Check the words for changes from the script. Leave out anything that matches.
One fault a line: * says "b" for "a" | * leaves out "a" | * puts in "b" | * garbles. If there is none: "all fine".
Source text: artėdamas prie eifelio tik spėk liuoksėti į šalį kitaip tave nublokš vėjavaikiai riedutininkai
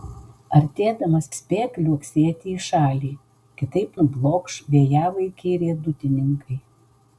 * leaves out "prie eifelio tik"
* leaves out "tave"